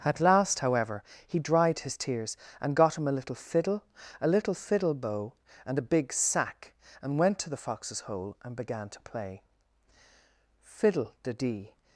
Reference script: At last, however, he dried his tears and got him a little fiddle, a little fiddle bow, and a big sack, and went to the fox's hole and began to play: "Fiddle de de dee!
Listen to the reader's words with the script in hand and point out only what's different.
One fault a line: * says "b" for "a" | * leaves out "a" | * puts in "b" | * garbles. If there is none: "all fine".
* leaves out "de"